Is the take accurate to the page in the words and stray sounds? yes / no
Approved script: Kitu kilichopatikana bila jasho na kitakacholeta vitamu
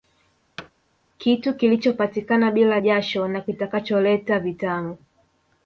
no